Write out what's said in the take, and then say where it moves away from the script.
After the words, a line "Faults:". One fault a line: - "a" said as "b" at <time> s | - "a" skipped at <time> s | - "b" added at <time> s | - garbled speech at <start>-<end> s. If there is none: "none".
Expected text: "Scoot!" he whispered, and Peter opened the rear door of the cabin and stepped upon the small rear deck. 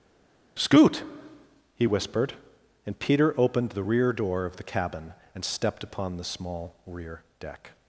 "Scoot!" he whispered, and Peter opened the rear door of the cabin and stepped upon the small rear deck.
Faults:
none